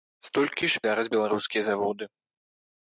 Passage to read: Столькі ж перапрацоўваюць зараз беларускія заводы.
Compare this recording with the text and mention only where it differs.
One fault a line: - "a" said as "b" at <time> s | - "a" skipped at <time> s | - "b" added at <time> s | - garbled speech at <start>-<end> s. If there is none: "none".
- "перапрацоўваюць" skipped at 0.8 s